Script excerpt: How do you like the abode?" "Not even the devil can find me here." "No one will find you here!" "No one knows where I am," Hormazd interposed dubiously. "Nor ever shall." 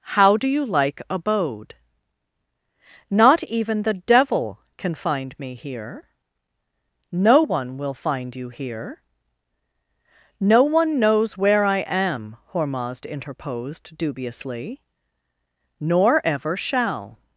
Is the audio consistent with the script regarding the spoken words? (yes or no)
no